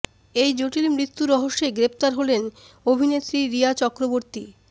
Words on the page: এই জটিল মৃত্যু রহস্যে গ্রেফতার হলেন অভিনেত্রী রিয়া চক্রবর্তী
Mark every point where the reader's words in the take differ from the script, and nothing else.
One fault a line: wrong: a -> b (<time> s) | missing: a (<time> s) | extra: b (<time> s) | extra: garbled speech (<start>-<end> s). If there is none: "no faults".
no faults